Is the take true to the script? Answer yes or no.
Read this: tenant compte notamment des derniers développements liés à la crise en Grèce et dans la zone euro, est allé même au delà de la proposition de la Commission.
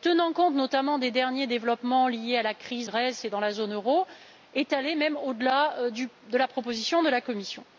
no